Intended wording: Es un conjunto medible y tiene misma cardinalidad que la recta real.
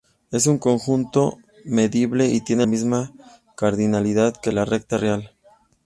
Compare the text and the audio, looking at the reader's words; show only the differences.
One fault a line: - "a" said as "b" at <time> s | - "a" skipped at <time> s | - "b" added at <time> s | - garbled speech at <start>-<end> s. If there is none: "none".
none